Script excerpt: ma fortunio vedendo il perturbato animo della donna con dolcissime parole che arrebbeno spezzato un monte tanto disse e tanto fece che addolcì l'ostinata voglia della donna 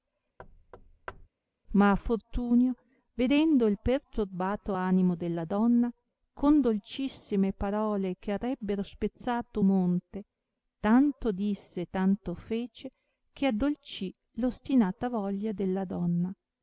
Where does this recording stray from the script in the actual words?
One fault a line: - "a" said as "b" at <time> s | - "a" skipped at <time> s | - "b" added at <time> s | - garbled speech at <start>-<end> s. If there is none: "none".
- "un" skipped at 9.6 s